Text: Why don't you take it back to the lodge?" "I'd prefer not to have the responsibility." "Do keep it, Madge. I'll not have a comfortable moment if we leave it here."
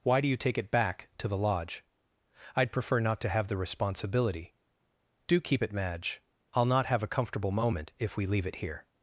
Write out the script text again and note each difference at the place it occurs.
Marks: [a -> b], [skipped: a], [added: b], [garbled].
Why [don't -> do] you take it back to the lodge?" "I'd prefer not to have the responsibility." "Do keep it, Madge. I'll not have a comfortable moment if we leave it here."